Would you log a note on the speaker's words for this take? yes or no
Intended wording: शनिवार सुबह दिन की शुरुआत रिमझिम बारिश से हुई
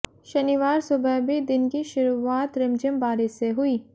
yes